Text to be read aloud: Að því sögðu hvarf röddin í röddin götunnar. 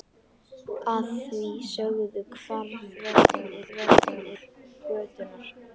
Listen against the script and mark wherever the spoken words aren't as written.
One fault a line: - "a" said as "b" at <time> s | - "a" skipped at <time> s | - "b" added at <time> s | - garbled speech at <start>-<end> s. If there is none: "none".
none